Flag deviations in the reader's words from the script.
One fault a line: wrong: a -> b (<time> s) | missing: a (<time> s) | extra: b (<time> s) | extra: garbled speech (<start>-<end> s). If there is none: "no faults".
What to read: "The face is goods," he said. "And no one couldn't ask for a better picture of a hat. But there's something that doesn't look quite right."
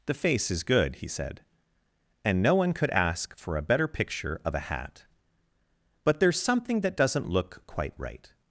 wrong: goods -> good (0.6 s)
wrong: couldn't -> could (2.7 s)